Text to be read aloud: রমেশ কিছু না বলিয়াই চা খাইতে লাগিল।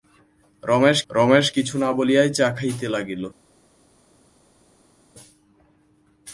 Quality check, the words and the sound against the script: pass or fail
fail